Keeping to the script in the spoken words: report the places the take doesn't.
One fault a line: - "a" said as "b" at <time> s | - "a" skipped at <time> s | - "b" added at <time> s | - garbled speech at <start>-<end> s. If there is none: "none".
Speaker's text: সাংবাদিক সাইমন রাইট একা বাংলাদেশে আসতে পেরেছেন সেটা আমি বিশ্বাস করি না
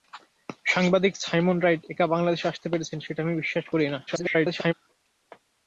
- garbled speech at 4.1-4.7 s